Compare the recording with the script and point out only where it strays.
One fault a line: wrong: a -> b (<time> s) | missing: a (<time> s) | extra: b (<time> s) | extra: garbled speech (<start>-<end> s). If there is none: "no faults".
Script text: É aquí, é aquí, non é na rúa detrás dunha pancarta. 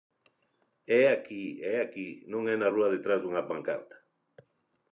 no faults